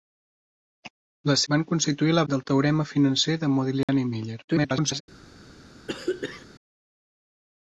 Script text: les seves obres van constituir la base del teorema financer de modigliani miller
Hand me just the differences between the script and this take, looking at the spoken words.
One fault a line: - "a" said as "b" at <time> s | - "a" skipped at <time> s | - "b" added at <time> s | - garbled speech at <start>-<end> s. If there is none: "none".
- "seves obres" skipped at 1.4 s
- "base" skipped at 2.2 s
- garbled speech at 4.5-5.0 s